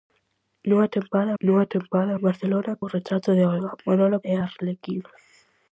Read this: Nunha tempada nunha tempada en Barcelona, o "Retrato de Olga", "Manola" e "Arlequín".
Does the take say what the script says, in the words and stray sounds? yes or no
yes